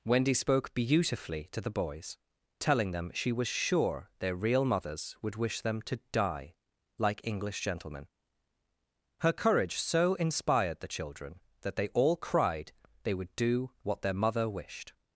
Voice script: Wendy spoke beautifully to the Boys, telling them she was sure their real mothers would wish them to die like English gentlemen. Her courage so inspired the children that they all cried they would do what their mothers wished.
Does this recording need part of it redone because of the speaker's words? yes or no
yes